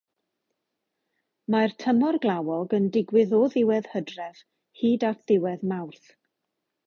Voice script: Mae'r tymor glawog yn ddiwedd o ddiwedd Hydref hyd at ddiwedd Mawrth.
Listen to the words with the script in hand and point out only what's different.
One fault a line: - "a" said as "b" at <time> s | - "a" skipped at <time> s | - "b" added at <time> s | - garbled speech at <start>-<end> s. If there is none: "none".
- "ddiwedd" said as "digwydd" at 3.0 s